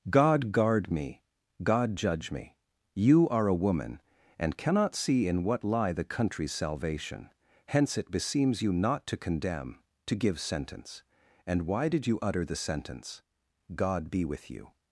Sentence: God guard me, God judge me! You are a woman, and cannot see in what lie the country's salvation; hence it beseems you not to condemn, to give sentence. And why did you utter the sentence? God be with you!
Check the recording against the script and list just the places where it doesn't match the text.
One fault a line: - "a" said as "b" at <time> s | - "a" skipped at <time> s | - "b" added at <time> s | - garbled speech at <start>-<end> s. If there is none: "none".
none